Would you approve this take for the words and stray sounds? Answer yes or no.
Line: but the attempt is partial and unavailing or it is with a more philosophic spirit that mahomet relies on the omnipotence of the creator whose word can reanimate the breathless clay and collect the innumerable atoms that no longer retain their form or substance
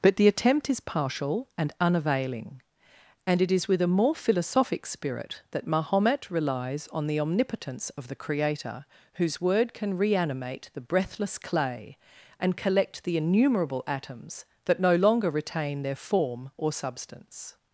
no